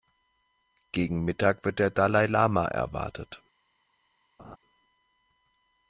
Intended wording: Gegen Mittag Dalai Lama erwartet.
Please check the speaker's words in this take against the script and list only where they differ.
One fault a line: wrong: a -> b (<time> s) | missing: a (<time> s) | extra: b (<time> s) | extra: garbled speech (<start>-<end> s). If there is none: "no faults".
extra: wird der (1.6 s)